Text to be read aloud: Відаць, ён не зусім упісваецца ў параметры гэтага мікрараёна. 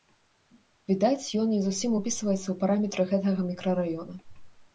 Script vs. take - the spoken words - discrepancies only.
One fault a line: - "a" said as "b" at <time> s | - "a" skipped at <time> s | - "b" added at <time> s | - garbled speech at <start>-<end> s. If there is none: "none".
none